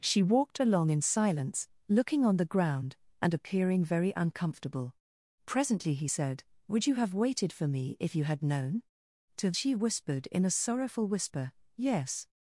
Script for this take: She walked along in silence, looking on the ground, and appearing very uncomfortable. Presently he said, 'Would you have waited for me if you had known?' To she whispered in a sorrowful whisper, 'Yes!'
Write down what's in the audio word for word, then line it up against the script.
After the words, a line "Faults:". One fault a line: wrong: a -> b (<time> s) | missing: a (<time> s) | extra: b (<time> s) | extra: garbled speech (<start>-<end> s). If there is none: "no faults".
She walked along in silence, looking on the ground, and appearing very uncomfortable. Presently he said, 'Would you have waited for me if you had known?' To she whispered in a sorrowful whisper, 'Yes!'
Faults:
no faults